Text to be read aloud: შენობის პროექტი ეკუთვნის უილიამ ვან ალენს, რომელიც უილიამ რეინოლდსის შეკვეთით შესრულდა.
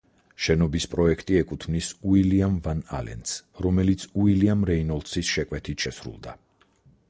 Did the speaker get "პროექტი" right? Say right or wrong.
right